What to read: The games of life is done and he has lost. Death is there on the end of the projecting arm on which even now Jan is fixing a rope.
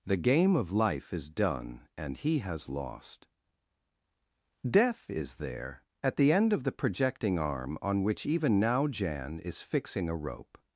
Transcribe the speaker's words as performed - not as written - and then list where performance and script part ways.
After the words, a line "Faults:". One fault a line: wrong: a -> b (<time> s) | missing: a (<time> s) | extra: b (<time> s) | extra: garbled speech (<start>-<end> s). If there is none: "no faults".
The game of life is done and he has lost. Death is there at the end of the projecting arm on which even now Jan is fixing a rope.
Faults:
wrong: games -> game (0.2 s)
wrong: on -> at (6.0 s)